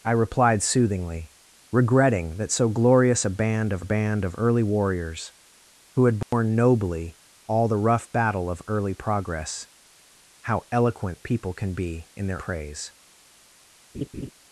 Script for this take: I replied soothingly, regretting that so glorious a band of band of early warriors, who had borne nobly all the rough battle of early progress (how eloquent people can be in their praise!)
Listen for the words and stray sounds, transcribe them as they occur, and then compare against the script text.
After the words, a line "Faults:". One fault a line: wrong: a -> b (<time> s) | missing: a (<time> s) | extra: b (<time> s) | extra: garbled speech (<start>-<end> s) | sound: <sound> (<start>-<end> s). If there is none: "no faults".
I replied soothingly, regretting that so glorious a band of band of early warriors, who had borne nobly all the rough battle of early progress (how eloquent people can be in their praise!)
Faults:
sound: dropout (6.2-6.3 s)
sound: laugh (13.9-14.3 s)